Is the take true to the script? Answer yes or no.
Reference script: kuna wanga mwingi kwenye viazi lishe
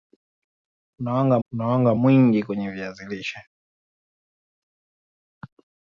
no